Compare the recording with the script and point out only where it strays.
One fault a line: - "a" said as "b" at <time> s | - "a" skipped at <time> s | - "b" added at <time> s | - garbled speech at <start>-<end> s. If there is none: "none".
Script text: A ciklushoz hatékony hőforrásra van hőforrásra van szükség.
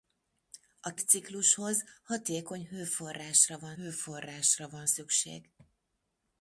none